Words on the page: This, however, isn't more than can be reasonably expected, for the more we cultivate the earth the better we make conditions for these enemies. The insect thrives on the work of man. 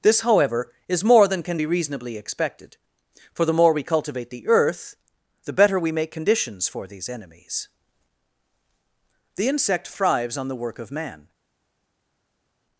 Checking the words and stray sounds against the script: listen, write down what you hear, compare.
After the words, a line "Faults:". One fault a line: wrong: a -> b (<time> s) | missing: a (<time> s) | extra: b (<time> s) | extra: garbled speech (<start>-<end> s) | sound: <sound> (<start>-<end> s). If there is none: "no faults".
This, however, is more than can be reasonably expected, for the more we cultivate the earth the better we make conditions for these enemies. The insect thrives on the work of man.
Faults:
wrong: isn't -> is (0.9 s)